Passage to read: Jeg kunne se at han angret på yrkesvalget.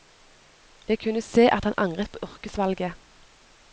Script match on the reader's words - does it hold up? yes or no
yes